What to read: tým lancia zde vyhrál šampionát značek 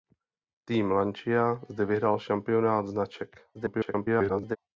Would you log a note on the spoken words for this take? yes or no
yes